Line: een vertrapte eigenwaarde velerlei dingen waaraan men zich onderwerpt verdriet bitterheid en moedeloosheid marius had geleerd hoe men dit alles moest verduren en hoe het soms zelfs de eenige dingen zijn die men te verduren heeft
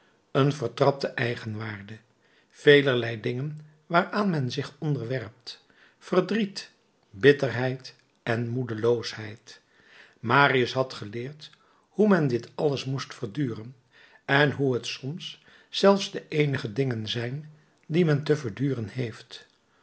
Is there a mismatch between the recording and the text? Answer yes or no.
no